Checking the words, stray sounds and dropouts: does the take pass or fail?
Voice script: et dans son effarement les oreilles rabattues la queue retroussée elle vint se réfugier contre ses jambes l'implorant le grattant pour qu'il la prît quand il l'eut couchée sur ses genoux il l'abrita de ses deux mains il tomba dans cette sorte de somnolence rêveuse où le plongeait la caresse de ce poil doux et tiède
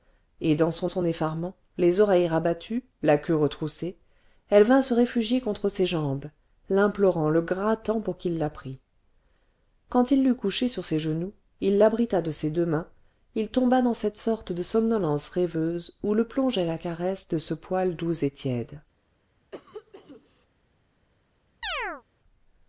fail